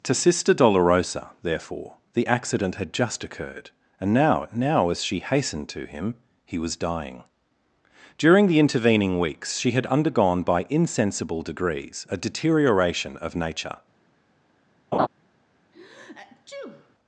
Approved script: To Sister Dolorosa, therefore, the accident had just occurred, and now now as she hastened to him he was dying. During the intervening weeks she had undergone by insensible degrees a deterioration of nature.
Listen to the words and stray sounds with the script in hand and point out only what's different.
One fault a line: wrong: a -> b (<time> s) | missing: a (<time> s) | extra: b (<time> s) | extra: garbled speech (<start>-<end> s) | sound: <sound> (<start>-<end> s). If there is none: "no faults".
sound: laugh (14.9-15.1 s)
sound: sneeze (15.7-16.9 s)